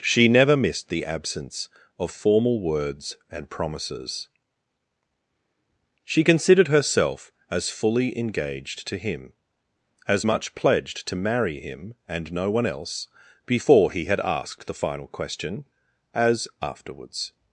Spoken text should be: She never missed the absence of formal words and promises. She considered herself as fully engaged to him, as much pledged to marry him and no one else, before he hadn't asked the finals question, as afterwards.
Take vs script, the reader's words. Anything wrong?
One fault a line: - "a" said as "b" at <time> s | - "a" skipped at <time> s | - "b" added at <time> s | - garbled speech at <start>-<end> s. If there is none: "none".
- "hadn't" said as "had" at 14.0 s
- "finals" said as "final" at 14.8 s